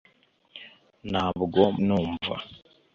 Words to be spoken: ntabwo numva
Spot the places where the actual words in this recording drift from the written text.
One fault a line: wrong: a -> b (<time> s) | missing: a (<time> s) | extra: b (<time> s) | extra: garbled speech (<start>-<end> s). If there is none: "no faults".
no faults